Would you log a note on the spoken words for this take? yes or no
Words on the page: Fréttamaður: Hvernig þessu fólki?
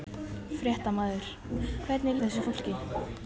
no